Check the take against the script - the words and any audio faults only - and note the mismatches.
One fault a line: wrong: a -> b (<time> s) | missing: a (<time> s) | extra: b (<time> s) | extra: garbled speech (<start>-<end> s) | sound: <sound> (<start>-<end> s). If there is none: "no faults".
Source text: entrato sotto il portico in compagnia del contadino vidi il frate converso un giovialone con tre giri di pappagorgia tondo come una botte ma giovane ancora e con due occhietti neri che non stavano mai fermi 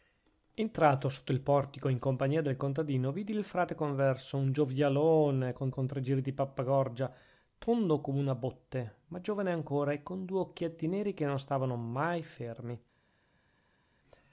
extra: con (5.7 s)